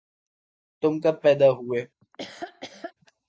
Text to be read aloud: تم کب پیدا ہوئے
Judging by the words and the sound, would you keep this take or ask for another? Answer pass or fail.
fail